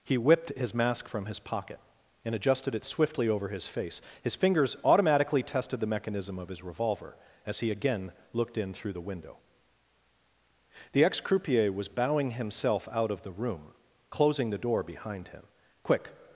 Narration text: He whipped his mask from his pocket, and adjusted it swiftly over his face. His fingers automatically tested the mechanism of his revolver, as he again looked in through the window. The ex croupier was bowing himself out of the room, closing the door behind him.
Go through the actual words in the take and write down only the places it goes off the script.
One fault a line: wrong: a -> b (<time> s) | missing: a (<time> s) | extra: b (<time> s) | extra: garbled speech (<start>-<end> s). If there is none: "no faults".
extra: Quick (15.8 s)